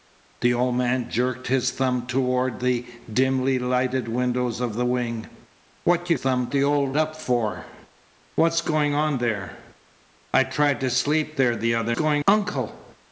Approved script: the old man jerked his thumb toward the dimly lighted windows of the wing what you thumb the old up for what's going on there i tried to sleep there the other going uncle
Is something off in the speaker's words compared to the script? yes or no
no